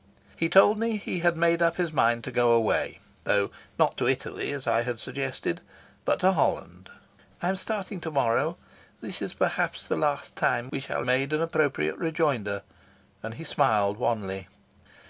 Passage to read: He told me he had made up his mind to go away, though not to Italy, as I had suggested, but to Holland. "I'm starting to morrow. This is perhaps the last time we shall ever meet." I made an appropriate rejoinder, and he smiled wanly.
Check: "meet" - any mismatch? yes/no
yes